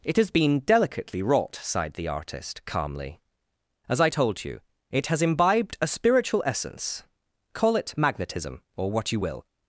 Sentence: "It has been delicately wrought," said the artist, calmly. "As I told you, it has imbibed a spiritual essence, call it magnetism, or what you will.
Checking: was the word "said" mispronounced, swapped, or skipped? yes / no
yes